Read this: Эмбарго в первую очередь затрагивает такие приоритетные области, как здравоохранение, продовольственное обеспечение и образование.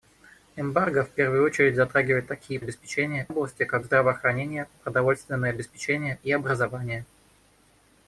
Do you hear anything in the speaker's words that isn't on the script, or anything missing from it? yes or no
yes